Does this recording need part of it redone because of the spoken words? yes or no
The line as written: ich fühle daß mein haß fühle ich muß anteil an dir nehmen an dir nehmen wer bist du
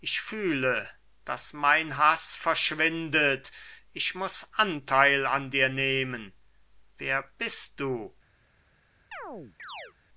yes